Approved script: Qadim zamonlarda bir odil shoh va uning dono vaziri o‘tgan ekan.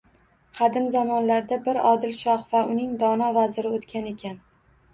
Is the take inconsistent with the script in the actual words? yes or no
no